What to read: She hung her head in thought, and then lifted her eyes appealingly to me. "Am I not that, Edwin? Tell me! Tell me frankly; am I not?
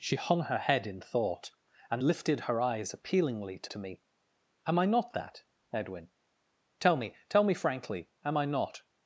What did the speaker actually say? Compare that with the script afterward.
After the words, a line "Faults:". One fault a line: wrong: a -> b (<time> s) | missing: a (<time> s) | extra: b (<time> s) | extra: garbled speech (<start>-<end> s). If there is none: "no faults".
She hung her head in thought, and lifted her eyes appealingly to to me. "Am I not that, Edwin? Tell me! Tell me frankly; am I not?
Faults:
missing: then (2.0 s)
extra: to (3.7 s)